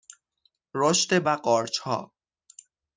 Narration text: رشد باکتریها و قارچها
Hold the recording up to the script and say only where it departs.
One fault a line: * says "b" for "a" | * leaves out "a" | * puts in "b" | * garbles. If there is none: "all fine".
* leaves out "باکتریها"